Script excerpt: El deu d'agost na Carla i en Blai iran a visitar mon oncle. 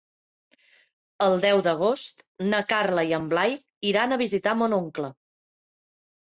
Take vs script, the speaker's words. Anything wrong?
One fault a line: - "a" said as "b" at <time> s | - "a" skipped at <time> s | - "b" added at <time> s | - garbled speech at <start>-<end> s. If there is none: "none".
none